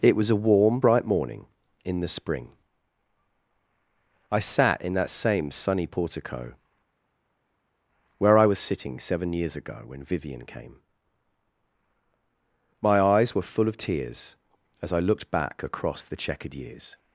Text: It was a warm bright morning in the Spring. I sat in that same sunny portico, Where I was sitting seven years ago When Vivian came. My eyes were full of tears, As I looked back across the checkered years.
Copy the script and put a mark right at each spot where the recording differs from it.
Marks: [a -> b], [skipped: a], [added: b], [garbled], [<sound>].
It was a warm bright morning in the Spring. I sat in that same sunny portico, Where I was sitting seven years ago When Vivian came. My eyes were full of tears, As I looked back across the checkered years.